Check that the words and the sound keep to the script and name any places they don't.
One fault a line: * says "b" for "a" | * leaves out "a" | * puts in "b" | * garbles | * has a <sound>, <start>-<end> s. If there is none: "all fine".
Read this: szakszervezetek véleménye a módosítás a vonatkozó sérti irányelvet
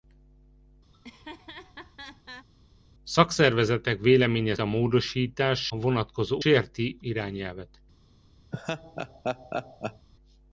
* has a laugh, 0.9-2.5 s
* has a laugh, 8.5-10.1 s